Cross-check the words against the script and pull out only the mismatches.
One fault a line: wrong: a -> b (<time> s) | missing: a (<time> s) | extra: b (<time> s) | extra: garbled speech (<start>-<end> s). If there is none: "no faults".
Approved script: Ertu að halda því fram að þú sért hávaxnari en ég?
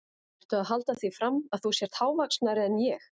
no faults